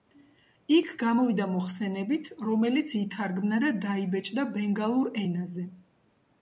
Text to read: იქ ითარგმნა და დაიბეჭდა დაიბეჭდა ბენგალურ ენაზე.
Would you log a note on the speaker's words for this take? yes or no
yes